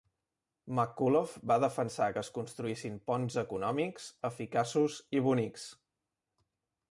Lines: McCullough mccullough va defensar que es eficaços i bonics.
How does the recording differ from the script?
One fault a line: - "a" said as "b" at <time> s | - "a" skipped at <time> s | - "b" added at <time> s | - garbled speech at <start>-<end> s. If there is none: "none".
- "mccullough" skipped at 1.3 s
- "construïssin ponts econòmics" added at 2.4 s